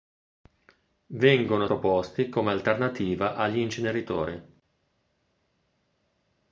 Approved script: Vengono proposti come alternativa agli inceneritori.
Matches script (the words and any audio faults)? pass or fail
pass